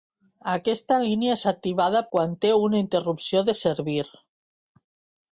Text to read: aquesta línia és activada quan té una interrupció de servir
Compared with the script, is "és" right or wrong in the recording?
right